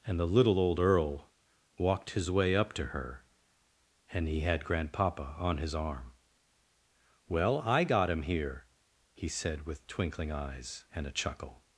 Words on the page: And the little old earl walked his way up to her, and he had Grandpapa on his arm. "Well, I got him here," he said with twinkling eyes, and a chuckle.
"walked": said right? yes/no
yes